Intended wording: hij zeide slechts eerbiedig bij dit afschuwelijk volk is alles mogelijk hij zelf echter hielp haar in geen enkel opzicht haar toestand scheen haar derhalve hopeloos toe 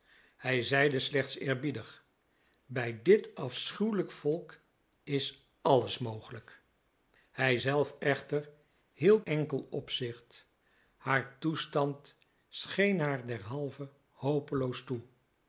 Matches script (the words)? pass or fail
fail